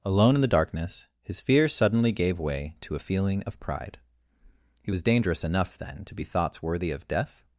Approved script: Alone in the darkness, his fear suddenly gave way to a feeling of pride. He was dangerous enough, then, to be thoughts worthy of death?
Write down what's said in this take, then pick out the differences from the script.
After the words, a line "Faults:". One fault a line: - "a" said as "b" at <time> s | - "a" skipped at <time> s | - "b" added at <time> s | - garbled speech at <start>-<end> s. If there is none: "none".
Alone in the darkness, his fear suddenly gave way to a feeling of pride. He was dangerous enough, then, to be thoughts worthy of death?
Faults:
none